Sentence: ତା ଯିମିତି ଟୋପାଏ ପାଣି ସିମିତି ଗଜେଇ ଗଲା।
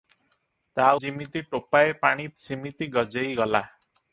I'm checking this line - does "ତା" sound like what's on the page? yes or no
yes